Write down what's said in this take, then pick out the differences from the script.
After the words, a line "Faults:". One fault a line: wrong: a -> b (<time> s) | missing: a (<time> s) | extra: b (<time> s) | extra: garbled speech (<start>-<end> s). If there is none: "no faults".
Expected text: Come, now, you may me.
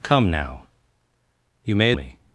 Come, now, you may me.
Faults:
no faults